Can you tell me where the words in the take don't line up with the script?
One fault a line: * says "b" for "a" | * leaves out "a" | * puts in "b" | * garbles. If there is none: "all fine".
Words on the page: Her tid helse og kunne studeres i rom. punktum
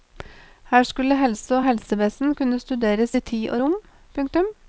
* says "skulle" for "tid"
* puts in "helsevesen"
* puts in "tid og"